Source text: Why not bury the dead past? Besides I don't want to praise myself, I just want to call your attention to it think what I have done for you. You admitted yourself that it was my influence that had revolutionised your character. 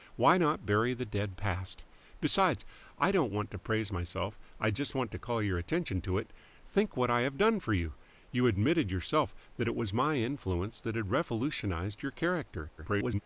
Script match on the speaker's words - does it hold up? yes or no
no